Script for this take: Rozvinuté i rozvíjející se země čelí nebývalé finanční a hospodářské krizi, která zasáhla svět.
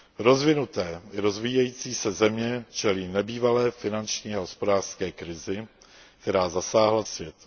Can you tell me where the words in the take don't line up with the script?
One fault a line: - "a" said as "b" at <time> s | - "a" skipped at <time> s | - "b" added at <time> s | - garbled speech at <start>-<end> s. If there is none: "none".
none